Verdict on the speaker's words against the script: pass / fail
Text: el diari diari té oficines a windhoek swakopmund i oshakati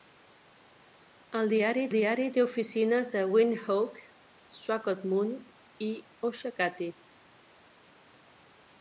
pass